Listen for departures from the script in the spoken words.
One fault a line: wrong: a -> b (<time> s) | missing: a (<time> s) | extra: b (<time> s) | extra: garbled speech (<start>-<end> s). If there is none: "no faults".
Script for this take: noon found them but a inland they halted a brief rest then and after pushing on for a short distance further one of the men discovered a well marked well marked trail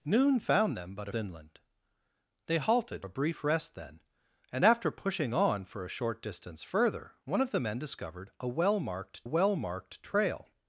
no faults